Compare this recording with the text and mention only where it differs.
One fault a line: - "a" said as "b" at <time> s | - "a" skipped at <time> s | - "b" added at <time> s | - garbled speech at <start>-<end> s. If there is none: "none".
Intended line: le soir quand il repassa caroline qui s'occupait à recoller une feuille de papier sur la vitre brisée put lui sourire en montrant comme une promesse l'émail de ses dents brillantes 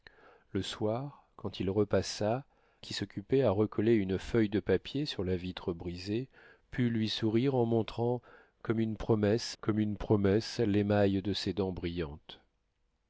- "caroline" skipped at 2.5 s
- "comme une promesse" added at 9.6 s